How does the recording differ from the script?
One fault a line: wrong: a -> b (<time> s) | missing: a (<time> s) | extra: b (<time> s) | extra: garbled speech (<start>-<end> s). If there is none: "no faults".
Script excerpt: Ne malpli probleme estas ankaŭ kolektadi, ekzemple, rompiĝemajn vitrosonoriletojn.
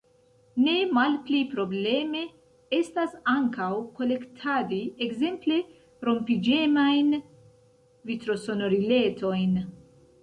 no faults